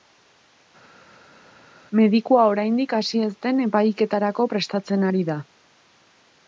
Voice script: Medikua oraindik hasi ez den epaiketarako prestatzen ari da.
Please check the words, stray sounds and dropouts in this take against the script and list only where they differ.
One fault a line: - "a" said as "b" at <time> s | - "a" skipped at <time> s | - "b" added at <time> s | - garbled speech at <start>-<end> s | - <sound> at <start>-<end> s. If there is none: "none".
none